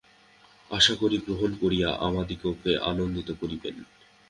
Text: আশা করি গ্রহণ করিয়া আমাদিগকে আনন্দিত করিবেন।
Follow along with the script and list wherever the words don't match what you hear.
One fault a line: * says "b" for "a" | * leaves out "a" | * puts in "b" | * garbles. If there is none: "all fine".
all fine